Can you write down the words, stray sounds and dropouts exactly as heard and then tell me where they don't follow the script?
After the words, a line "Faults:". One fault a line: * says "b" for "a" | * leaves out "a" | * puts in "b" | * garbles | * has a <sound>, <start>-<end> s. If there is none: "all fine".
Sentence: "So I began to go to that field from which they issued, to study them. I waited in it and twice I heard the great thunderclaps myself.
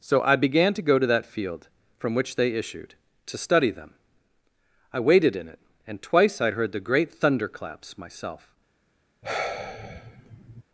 "So I began to go to that field from which they issued, to study them. I waited in it and twice I heard the great thunderclaps myself.
Faults:
* has a sigh, 9.2-10.6 s